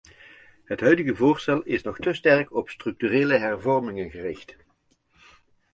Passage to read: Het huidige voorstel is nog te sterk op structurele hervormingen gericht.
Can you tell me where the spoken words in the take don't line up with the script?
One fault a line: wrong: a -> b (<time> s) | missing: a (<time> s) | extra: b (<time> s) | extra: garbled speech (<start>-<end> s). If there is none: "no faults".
no faults